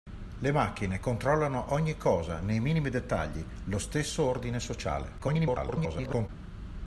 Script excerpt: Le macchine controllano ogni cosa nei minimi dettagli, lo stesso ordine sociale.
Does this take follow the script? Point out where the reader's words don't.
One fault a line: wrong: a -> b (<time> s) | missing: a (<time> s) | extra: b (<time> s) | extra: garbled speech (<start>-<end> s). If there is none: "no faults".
extra: garbled speech (5.2-6.3 s)